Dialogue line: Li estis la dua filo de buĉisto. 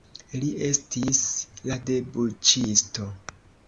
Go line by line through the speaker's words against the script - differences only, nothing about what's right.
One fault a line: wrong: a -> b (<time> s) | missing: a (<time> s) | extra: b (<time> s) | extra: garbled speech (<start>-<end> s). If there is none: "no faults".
missing: dua filo (1.8 s)